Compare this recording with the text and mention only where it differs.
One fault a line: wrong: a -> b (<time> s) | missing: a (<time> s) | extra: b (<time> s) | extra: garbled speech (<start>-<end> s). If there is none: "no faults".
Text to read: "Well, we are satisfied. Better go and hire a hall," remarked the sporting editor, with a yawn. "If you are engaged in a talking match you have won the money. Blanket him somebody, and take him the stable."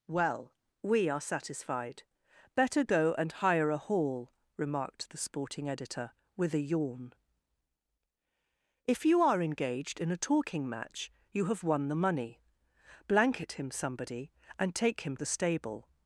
no faults